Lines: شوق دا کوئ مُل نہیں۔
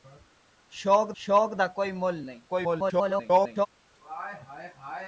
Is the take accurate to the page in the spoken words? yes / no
no